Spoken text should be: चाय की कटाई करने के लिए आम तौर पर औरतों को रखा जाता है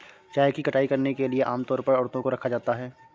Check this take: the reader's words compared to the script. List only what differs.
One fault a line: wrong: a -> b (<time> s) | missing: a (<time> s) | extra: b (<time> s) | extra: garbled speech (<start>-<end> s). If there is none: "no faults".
no faults